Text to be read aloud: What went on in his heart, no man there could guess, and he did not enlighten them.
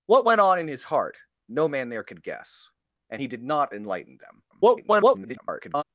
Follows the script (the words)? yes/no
no